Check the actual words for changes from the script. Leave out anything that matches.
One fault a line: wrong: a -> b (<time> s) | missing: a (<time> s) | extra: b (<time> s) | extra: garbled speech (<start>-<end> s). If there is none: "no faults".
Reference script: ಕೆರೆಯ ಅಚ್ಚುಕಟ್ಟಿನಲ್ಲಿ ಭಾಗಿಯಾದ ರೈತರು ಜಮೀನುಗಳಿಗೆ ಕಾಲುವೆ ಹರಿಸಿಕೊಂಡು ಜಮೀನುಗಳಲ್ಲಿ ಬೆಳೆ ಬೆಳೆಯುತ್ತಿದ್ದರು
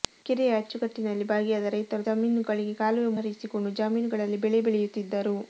no faults